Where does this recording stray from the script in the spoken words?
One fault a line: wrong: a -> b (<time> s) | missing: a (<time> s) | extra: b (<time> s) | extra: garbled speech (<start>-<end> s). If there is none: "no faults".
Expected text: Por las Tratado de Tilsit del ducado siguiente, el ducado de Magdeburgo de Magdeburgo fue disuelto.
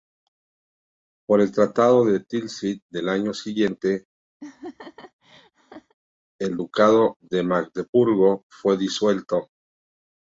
wrong: las -> el (1.4 s)
wrong: ducado -> año (3.1 s)
missing: de Magdeburgo (8.5 s)